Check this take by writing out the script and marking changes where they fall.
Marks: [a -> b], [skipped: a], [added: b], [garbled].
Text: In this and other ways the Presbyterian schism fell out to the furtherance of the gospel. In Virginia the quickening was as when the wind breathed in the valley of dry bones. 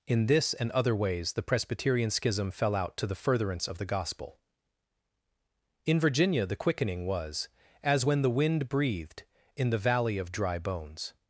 In this and other ways the Presbyterian schism fell out to the furtherance of the gospel. In Virginia the quickening was as when the wind breathed in the valley of dry bones.